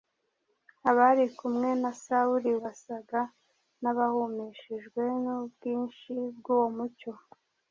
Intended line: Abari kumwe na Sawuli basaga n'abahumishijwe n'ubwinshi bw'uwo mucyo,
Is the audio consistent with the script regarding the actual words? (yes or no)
yes